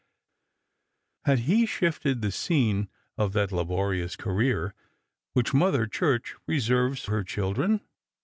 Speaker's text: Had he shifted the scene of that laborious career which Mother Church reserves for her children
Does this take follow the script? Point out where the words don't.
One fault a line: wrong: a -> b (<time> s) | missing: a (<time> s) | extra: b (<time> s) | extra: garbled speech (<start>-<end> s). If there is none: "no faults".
missing: for (7.0 s)